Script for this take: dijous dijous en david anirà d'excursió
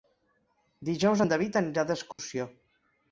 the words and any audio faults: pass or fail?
fail